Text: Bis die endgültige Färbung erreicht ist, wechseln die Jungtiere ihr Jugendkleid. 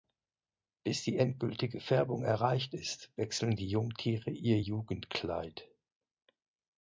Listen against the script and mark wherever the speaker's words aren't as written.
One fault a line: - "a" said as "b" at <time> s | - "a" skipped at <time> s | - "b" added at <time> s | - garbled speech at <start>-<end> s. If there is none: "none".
none